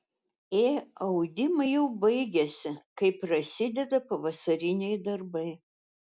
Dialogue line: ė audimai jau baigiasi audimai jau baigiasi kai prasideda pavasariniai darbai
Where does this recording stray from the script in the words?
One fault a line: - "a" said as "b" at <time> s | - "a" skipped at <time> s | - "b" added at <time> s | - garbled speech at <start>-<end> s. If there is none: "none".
- "audimai jau baigiasi" skipped at 2.7 s